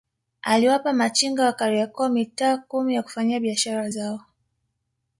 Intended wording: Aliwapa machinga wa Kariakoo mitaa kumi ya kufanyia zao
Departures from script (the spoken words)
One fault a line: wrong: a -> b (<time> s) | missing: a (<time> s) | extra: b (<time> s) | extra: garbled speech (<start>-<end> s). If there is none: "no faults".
extra: biashara (3.4 s)